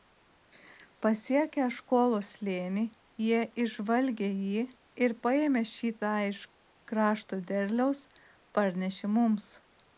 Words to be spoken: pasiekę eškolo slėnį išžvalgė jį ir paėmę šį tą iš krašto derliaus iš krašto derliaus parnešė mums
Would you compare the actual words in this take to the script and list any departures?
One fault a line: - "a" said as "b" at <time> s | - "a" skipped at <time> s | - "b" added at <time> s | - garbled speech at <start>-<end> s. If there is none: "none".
- "jie" added at 3.2 s
- "iš krašto derliaus" skipped at 8.1 s